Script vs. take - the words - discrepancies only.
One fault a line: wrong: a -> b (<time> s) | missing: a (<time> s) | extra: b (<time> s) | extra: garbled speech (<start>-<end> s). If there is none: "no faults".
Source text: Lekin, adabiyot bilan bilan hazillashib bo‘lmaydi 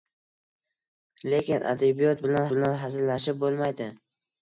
no faults